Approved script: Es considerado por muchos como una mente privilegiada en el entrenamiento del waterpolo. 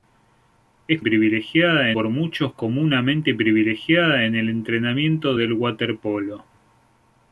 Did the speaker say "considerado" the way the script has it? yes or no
no